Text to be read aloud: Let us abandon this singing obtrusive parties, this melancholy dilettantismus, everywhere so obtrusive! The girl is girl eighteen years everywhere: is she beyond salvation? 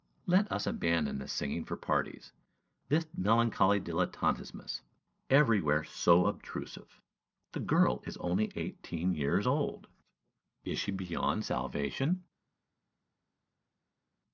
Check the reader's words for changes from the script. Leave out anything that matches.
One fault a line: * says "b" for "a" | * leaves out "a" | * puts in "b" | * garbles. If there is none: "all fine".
* says "for" for "obtrusive"
* says "only" for "girl"
* says "old" for "everywhere"